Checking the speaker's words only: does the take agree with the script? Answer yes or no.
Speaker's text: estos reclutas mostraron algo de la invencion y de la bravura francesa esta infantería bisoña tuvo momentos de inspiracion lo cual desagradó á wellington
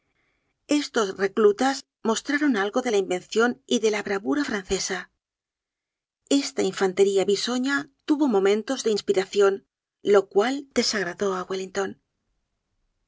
yes